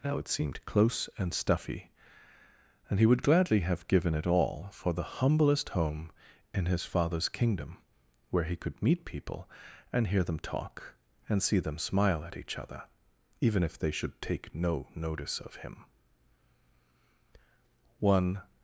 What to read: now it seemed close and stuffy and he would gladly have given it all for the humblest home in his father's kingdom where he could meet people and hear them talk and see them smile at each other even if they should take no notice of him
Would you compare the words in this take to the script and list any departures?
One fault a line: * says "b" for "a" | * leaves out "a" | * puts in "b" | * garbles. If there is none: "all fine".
* puts in "one"